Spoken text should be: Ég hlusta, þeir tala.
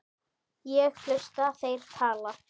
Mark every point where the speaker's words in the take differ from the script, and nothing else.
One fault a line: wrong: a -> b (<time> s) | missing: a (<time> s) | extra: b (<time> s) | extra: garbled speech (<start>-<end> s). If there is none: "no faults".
no faults